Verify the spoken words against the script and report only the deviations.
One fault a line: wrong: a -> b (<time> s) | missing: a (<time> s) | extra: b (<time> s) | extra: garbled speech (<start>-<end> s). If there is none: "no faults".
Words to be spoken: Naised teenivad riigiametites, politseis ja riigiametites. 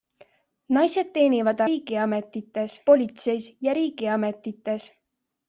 no faults